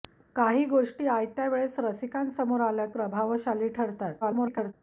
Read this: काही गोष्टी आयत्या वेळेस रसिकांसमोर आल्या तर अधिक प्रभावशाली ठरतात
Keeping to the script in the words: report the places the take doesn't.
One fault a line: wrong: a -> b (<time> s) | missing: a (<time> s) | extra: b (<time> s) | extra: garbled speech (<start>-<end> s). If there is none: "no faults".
missing: तर अधिक (2.9 s)
extra: garbled speech (4.2-4.7 s)